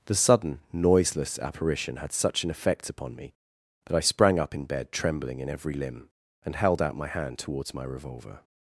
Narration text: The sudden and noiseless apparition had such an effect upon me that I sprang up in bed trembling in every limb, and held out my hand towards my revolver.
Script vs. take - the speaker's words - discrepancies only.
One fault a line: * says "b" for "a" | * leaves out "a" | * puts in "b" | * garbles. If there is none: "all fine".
* leaves out "and"